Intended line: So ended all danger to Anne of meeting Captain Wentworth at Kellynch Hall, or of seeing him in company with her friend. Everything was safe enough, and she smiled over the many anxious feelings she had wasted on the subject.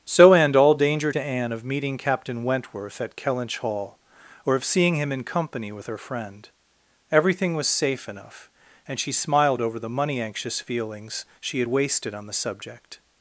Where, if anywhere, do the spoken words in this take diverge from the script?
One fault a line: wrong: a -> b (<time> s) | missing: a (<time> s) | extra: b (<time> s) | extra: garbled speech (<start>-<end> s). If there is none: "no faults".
wrong: ended -> end (0.3 s)
wrong: many -> money (9.9 s)